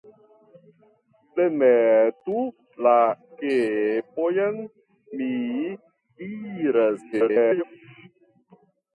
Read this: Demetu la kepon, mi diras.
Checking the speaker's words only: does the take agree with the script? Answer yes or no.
no